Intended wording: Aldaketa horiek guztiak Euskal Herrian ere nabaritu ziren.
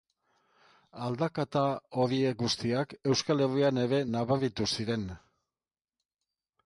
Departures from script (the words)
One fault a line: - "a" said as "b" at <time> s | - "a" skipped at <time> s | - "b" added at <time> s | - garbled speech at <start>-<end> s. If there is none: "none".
none